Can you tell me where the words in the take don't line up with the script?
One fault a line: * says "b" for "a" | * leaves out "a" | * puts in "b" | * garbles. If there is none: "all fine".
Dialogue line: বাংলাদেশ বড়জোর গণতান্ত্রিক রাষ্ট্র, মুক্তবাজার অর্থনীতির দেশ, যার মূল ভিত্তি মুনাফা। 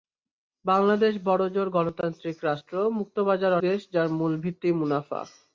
* leaves out "অর্থনীতির"